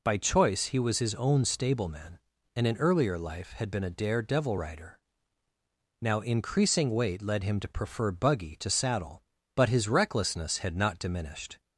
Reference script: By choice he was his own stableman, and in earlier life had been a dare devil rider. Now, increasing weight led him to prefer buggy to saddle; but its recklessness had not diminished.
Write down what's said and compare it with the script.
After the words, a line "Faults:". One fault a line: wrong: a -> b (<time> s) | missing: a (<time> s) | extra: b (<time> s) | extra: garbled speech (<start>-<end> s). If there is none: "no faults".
By choice he was his own stableman, and in earlier life had been a dare devil rider. Now, increasing weight led him to prefer buggy to saddle; but his recklessness had not diminished.
Faults:
wrong: its -> his (9.7 s)